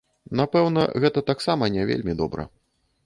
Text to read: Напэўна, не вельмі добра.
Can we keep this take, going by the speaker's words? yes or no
no